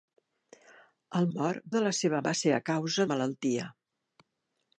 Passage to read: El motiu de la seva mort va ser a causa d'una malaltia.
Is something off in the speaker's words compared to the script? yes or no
yes